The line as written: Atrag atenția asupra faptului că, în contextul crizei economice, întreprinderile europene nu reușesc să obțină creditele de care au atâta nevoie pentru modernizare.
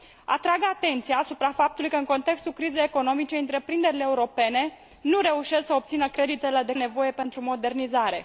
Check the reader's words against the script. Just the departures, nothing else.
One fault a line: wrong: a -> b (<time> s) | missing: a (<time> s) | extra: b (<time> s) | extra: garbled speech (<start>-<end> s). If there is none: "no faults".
missing: care au atâta (6.7 s)